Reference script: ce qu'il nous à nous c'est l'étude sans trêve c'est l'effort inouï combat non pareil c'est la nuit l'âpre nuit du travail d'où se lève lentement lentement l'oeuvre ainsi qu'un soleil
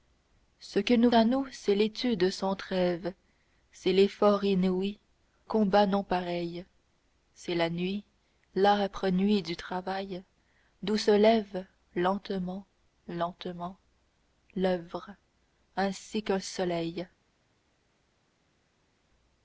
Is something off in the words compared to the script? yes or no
no